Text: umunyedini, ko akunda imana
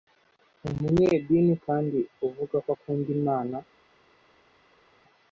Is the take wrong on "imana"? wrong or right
right